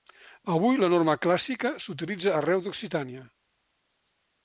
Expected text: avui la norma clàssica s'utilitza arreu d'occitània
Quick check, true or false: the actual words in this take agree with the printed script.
true